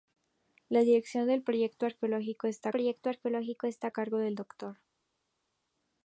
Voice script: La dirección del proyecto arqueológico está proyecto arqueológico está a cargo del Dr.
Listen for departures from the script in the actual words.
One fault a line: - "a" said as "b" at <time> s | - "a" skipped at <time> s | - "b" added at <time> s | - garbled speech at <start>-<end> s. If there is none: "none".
none